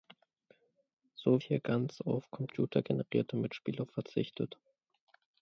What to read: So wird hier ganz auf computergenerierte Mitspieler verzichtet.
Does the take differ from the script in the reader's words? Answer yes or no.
yes